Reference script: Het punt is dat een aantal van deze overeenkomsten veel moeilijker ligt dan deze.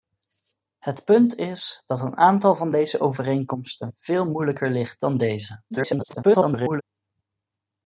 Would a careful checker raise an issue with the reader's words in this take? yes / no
yes